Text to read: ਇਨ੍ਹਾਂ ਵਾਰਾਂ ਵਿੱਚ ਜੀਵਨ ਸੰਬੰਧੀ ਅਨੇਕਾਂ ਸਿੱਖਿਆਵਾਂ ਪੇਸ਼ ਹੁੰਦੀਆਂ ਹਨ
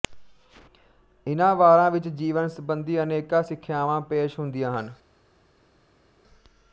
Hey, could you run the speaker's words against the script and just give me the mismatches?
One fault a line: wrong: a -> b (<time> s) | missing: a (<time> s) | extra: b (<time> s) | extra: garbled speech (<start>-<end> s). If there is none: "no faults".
no faults